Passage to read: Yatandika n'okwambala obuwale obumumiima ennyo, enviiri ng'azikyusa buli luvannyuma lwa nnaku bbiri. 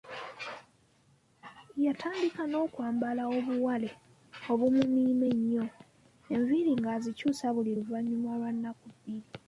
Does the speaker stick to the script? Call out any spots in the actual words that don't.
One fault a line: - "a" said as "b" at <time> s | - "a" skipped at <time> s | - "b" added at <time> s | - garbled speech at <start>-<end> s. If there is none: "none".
none